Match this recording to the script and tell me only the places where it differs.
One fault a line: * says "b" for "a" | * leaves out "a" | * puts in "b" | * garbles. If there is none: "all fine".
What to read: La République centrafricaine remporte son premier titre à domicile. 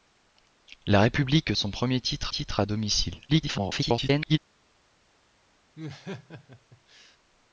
* leaves out "centrafricaine remporte"
* puts in "titre"
* garbles